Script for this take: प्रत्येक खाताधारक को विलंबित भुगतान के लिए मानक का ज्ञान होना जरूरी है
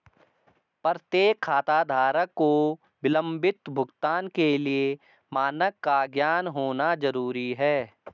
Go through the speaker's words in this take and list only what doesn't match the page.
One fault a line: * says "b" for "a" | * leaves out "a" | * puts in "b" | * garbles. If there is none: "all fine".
all fine